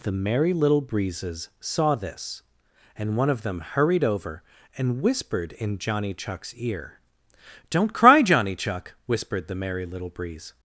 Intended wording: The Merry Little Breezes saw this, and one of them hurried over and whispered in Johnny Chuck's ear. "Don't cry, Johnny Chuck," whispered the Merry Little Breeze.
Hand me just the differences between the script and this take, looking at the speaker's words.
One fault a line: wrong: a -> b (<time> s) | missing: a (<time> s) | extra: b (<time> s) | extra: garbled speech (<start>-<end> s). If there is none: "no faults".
no faults